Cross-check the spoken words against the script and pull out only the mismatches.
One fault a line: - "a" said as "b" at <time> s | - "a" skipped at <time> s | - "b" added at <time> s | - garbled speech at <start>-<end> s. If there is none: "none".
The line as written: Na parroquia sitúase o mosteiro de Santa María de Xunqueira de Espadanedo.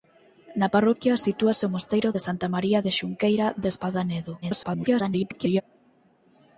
- garbled speech at 4.4-5.6 s